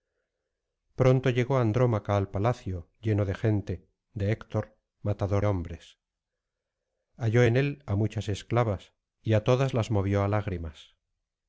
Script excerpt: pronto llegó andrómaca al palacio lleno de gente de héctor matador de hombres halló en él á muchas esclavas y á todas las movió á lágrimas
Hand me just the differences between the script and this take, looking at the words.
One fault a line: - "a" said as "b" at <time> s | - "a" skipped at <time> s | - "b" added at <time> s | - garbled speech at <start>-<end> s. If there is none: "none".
- "de" skipped at 5.5 s